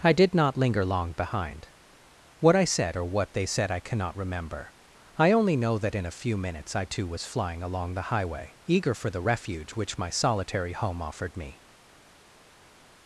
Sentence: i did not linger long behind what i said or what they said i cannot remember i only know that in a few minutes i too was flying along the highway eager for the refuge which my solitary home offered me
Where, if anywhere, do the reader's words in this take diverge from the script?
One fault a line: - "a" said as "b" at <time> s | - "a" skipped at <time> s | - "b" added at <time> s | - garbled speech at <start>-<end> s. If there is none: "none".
none